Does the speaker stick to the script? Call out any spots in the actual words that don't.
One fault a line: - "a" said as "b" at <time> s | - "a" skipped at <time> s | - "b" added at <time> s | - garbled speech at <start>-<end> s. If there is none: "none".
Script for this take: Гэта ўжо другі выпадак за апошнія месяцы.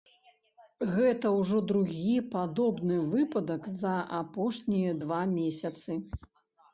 - "падобны" added at 2.4 s
- "два" added at 5.0 s